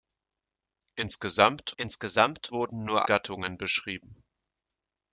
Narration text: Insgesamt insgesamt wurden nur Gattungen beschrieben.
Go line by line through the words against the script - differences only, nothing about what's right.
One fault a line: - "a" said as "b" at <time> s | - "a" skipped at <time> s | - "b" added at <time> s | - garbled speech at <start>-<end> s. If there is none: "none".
none